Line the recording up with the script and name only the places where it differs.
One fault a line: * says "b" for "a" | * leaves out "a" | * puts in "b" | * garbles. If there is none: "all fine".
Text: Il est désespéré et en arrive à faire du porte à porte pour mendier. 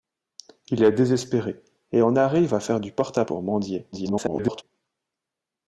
* leaves out "porte"
* garbles